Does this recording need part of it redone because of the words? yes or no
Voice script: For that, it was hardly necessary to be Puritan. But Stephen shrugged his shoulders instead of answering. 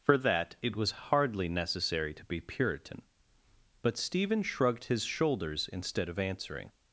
no